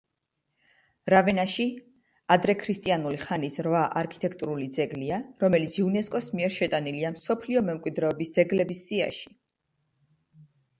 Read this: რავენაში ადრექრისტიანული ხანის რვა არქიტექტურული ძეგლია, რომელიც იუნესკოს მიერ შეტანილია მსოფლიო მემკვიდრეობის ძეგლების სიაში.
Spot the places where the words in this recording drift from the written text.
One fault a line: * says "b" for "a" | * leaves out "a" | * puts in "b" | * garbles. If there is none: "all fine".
all fine